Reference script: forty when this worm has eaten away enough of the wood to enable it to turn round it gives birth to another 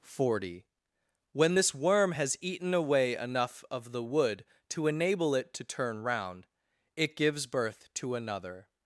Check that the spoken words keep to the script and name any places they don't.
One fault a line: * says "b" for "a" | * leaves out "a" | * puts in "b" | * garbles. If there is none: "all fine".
all fine